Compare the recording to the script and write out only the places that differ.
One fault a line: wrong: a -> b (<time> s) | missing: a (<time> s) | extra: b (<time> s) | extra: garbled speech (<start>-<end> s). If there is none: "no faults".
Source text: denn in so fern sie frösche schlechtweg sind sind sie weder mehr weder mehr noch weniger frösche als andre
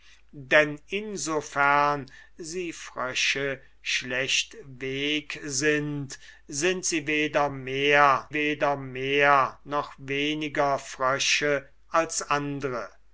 no faults